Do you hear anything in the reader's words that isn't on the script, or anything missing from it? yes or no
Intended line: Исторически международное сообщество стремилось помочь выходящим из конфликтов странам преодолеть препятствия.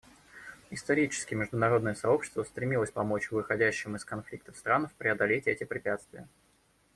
yes